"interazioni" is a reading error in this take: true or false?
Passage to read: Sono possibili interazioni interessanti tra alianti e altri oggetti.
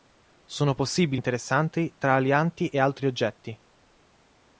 true